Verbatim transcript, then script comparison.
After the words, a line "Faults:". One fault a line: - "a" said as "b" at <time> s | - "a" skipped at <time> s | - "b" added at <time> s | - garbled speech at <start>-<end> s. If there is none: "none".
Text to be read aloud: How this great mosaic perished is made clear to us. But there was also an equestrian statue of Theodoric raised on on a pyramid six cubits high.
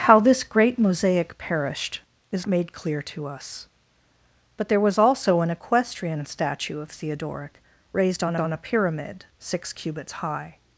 How this great mosaic perished is made clear to us. But there was also an equestrian statue of Theodoric raised on on a pyramid six cubits high.
Faults:
none